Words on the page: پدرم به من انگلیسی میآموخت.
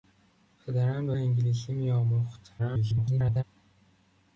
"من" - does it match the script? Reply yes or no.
no